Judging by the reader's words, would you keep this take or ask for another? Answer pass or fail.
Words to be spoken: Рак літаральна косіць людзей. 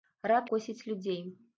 fail